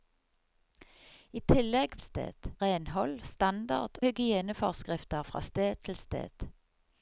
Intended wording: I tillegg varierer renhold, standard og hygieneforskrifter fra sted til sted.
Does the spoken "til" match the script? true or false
true